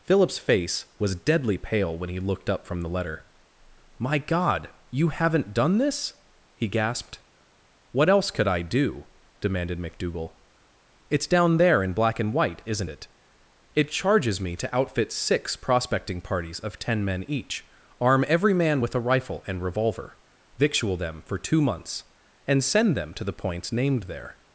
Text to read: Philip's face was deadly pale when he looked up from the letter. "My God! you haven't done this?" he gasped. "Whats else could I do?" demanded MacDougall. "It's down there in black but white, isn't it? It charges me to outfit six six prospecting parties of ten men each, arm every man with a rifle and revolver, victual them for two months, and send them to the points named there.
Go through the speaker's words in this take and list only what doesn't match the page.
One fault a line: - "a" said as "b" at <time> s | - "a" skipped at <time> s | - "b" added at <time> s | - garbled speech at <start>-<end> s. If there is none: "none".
- "Whats" said as "What" at 7.9 s
- "but" said as "and" at 12.2 s
- "six" skipped at 15.6 s